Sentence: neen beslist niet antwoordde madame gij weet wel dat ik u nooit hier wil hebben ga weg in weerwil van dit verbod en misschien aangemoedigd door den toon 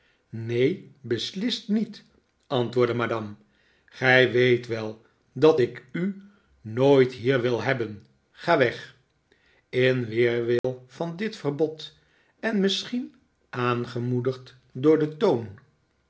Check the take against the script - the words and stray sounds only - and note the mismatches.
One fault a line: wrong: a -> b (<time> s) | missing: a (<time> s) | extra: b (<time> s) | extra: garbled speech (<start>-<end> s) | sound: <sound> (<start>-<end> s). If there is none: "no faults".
sound: dropout (10.6-10.6 s)